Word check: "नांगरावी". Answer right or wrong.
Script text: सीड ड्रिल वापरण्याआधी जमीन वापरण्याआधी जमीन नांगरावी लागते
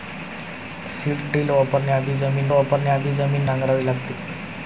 right